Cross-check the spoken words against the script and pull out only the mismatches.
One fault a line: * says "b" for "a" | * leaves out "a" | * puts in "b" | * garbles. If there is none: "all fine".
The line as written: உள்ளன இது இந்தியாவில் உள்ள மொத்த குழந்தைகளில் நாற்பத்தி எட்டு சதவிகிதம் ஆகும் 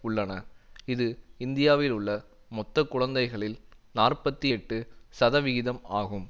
all fine